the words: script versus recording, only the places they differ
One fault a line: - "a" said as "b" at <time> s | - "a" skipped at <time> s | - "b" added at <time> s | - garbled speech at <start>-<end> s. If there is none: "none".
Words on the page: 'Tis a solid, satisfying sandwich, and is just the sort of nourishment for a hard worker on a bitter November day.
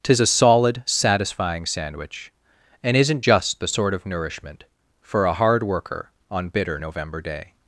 - "is" said as "isn't" at 3.0 s
- "a" skipped at 6.5 s